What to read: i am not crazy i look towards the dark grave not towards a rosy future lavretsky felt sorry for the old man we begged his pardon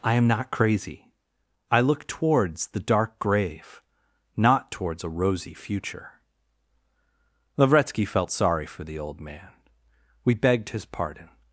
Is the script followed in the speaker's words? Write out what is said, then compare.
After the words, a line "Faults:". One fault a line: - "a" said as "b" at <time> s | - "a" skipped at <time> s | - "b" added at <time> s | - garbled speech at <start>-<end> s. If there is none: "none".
i am not crazy i look towards the dark grave not towards a rosy future lavretsky felt sorry for the old man we begged his pardon
Faults:
none